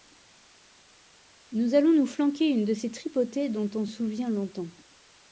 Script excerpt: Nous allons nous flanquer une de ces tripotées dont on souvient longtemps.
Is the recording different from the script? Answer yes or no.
no